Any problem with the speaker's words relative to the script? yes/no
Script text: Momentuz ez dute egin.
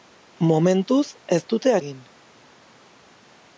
no